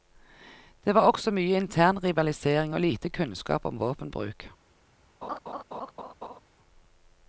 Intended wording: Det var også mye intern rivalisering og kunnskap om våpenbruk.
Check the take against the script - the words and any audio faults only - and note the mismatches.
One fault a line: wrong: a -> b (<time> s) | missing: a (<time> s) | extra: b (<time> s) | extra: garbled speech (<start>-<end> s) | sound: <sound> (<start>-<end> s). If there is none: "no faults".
extra: lite (2.8 s)
sound: laugh (5.2-6.4 s)